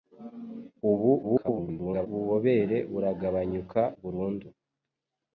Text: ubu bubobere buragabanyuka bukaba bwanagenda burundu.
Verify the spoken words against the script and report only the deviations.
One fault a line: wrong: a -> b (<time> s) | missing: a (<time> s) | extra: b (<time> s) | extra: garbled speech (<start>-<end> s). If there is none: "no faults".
extra: garbled speech (1.2-2.1 s)
missing: bukaba bwanagenda (3.8 s)